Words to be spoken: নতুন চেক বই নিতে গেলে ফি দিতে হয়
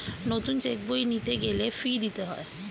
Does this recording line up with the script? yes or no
yes